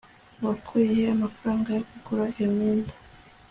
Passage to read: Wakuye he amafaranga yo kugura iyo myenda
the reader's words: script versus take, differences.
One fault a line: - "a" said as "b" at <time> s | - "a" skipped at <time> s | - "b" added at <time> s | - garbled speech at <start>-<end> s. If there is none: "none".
none